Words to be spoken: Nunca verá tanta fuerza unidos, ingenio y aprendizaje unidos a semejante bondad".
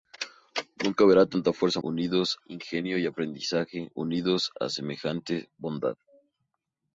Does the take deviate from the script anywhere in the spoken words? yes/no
no